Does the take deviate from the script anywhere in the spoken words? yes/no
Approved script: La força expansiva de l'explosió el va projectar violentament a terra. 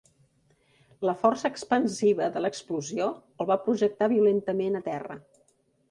no